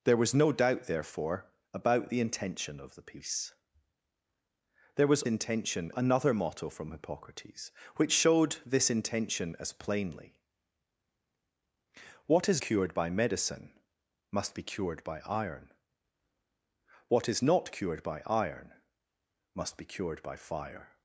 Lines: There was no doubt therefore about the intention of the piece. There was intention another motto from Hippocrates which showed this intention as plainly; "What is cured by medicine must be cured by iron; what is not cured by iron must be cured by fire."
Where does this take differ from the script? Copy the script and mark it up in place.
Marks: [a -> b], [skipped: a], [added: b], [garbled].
There was no doubt therefore about the intention of the piece. There was intention another motto from Hippocrates which showed this intention as plainly; "What is cured by medicine must be cured by iron; what is not cured by iron must be cured by fire."